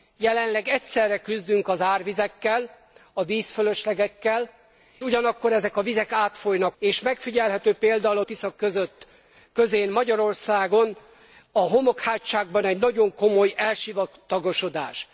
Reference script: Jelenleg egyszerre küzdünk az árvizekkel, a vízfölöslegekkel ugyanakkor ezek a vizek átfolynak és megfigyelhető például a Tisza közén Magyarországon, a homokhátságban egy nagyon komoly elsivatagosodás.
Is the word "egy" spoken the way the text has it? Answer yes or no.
yes